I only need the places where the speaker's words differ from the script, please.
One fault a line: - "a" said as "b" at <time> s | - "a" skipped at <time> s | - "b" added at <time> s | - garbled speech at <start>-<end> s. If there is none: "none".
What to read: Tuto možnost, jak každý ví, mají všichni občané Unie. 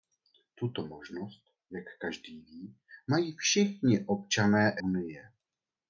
none